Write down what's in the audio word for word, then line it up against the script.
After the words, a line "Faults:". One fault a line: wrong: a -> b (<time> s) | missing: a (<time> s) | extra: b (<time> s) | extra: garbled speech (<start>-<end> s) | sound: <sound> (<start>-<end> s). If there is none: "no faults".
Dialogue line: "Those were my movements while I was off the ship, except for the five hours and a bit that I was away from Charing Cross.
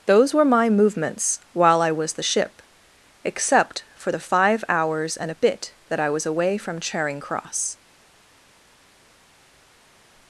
"Those were my movements while I was the ship, except for the five hours and a bit that I was away from Charing Cross.
Faults:
missing: off (2.1 s)